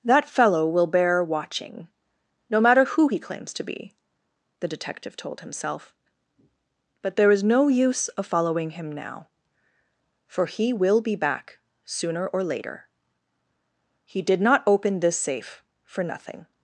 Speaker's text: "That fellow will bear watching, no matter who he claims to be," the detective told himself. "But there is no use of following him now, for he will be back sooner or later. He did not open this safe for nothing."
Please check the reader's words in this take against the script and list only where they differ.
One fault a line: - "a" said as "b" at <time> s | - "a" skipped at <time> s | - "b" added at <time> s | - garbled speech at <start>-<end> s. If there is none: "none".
none